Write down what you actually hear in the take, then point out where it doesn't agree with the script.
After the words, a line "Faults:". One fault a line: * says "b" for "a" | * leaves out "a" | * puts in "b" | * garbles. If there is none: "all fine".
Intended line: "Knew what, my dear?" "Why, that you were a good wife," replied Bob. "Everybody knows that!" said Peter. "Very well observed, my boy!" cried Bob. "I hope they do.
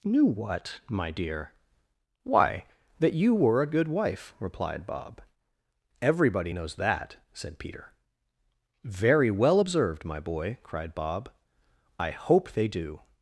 "Knew what, my dear?" "Why, that you were a good wife," replied Bob. "Everybody knows that!" said Peter. "Very well observed, my boy!" cried Bob. "I hope they do.
Faults:
all fine